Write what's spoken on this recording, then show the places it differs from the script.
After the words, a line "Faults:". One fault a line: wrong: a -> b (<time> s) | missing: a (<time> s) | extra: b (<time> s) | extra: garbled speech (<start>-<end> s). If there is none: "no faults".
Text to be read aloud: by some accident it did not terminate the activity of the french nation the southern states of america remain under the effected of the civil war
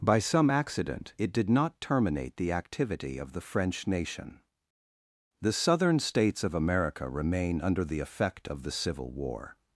by some accident it did not terminate the activity of the french nation the southern states of america remain under the effect of the civil war
Faults:
wrong: effected -> effect (8.0 s)